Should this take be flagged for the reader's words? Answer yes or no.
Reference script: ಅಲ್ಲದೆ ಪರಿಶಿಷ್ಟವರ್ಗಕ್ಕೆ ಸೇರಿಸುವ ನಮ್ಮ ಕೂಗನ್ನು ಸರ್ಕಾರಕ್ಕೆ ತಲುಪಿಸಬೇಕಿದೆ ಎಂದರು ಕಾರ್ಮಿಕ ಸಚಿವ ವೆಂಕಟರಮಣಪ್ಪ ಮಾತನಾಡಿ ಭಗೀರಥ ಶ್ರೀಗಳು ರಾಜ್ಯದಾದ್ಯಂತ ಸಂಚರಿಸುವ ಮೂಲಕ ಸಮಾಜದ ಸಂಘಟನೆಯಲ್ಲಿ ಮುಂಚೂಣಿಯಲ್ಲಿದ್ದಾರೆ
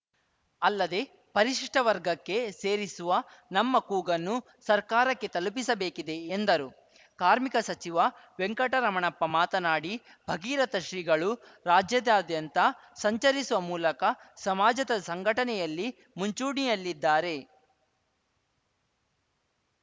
no